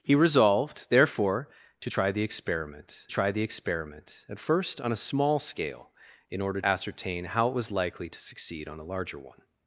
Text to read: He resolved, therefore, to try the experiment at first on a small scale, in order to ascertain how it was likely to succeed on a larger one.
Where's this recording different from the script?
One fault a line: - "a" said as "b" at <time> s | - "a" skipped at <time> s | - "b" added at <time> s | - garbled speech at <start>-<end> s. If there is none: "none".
- "try the experiment" added at 3.1 s
- "to" skipped at 6.6 s